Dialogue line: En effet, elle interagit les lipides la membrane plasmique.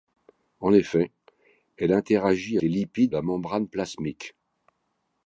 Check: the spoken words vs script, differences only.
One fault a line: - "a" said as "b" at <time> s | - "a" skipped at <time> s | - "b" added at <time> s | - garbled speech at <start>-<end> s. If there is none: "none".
none